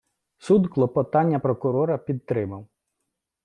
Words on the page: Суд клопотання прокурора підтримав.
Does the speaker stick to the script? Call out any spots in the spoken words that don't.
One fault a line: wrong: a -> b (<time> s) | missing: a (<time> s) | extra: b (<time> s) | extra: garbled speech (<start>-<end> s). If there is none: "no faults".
no faults